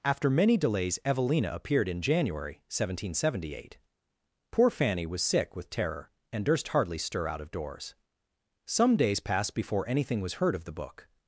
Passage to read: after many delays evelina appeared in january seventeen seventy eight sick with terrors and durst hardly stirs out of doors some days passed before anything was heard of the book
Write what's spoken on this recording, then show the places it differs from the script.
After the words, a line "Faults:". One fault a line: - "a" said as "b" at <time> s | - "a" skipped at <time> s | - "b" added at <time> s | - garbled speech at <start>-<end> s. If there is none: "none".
after many delays evelina appeared in january seventeen seventy eight poor fanny was sick with terror and durst hardly stir out of doors some days passed before anything was heard of the book
Faults:
- "poor fanny was" added at 4.5 s
- "terrors" said as "terror" at 5.7 s
- "stirs" said as "stir" at 7.0 s